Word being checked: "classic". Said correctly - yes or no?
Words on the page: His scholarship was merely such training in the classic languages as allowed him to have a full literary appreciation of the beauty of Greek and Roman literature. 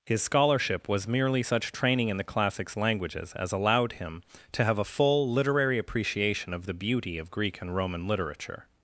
no